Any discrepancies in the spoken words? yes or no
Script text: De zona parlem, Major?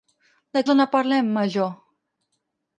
no